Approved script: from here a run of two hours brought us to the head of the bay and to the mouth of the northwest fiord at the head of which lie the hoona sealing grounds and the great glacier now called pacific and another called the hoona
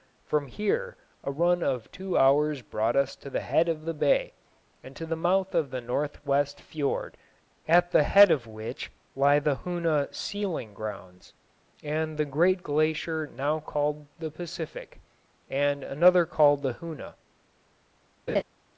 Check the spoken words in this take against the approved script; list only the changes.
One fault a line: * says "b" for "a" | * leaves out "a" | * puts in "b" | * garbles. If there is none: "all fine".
* puts in "the"